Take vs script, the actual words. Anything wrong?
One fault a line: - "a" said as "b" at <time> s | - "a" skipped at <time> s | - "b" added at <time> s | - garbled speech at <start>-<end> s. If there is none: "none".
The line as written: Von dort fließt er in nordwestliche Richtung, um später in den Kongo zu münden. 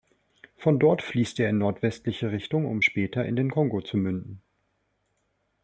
none